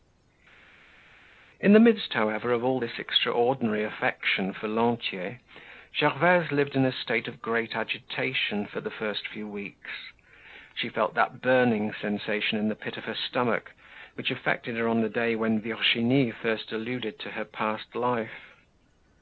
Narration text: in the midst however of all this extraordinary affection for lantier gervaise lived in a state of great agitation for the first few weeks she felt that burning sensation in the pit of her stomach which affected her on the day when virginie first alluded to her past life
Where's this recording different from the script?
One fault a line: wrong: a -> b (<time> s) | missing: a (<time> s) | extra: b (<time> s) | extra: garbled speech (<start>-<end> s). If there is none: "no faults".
no faults